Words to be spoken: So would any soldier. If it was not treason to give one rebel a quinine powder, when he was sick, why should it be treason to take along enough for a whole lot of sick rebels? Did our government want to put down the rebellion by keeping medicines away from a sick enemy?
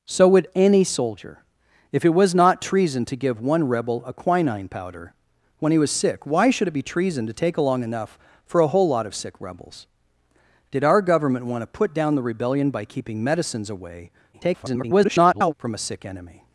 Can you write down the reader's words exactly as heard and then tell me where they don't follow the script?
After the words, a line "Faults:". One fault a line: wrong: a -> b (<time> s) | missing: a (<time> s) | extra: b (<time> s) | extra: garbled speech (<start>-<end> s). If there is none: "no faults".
So would any soldier. If it was not treason to give one rebel a quinine powder, when he was sick, why should it be treason to take along enough for a whole lot of sick rebels? Did our government want to put down the rebellion by keeping medicines away [garbled] from a sick enemy?
Faults:
extra: garbled speech (14.3-15.5 s)